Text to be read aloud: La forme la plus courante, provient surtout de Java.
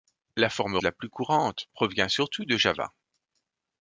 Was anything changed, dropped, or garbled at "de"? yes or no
no